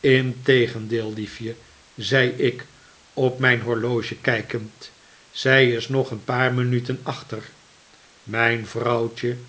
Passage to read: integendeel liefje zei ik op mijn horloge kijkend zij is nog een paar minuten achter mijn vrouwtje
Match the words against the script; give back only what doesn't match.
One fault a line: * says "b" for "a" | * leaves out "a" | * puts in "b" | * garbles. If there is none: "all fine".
all fine